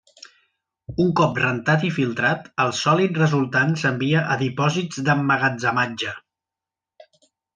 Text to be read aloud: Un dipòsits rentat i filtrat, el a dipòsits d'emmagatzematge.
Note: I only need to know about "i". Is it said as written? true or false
true